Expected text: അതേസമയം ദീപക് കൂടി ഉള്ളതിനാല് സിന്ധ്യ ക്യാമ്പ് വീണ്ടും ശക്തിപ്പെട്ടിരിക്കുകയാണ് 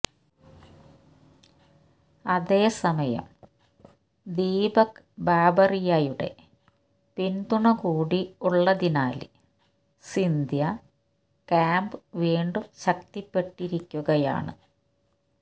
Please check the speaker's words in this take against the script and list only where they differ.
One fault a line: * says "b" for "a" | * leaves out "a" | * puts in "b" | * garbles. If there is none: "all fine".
* puts in "ബാബറിയയുടെ പിന്തുണ"